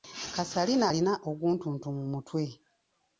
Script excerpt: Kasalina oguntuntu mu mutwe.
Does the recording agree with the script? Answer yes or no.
no